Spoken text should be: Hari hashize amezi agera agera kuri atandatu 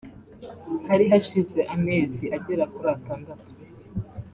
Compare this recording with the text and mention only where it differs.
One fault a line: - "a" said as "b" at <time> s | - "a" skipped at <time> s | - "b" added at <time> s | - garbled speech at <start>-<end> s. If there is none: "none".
- "agera" skipped at 2.6 s